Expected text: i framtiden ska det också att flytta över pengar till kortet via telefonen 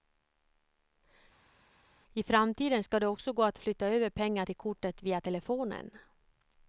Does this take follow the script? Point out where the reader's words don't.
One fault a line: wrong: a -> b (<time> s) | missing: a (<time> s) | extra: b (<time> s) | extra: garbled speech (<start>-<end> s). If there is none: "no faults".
extra: gå (3.3 s)